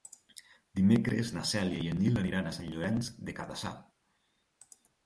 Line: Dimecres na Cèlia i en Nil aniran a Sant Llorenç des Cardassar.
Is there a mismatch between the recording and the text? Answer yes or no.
no